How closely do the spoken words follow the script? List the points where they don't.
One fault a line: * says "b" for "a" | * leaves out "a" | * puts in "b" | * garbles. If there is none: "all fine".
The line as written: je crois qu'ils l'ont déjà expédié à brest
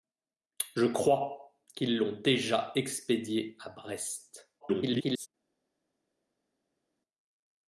* garbles